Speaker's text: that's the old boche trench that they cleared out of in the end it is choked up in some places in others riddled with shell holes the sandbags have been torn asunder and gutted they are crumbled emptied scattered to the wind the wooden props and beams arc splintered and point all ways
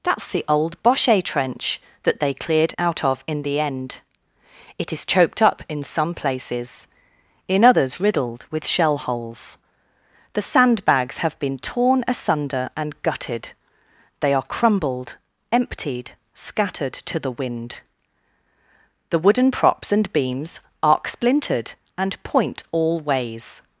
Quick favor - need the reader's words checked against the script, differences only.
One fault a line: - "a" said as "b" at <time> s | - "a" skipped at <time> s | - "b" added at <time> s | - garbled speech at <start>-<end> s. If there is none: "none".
none